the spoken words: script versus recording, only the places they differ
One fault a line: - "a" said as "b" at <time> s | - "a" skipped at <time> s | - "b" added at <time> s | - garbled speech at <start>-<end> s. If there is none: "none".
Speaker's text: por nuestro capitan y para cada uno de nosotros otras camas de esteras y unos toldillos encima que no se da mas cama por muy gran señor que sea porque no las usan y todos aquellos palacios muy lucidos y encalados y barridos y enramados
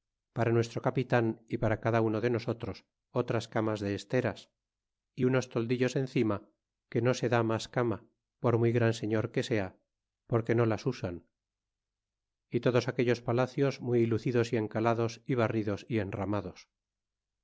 - "por" said as "para" at 0.3 s